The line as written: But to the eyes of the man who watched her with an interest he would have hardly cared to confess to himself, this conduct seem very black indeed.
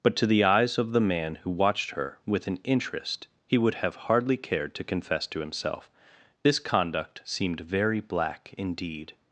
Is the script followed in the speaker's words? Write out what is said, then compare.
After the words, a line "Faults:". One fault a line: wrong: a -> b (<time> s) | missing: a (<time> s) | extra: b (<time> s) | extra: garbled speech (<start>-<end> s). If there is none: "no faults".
But to the eyes of the man who watched her with an interest he would have hardly cared to confess to himself, this conduct seemed very black indeed.
Faults:
wrong: seem -> seemed (7.2 s)